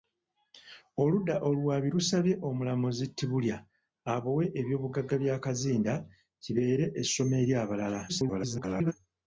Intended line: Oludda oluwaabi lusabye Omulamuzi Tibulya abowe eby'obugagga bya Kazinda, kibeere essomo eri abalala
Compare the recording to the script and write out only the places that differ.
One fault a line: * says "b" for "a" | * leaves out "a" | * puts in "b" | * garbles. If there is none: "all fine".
* garbles